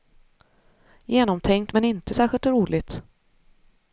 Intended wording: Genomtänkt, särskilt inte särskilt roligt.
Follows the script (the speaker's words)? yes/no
no